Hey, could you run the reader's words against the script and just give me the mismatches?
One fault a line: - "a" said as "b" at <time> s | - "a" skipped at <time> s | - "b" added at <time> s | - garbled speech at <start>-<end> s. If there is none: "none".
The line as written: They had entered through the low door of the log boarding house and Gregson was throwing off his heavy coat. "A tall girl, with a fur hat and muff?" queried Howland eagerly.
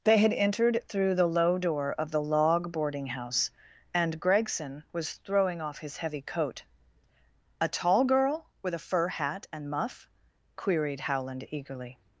none